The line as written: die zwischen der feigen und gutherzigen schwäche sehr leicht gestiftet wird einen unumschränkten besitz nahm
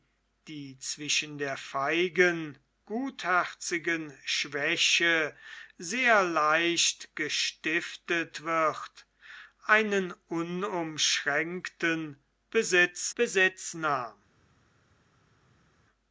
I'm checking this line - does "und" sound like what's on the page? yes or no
no